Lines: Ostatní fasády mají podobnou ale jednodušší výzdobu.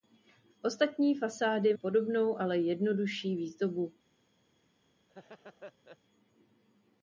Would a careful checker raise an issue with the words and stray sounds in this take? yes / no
yes